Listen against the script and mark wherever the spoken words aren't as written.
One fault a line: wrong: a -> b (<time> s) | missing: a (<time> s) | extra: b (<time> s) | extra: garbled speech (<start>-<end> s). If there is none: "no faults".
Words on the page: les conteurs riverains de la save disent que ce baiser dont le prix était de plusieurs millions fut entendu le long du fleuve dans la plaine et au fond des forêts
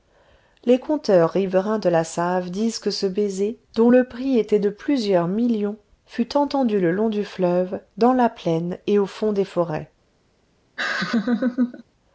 no faults